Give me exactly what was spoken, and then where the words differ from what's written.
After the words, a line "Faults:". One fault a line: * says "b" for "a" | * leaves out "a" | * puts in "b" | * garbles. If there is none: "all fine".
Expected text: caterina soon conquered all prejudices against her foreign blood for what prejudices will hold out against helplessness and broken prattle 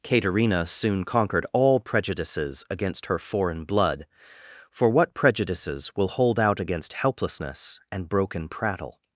caterina soon conquered all prejudices against her foreign blood for what prejudices will hold out against helplessness and broken prattle
Faults:
all fine